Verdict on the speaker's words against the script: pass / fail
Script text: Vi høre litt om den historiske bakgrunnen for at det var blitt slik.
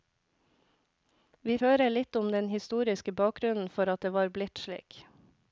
pass